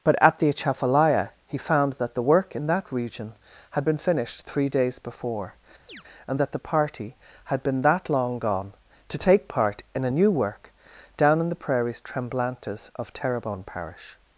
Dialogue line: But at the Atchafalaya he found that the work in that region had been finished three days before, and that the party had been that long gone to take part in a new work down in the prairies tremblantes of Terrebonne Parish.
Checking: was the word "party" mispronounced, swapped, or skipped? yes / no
no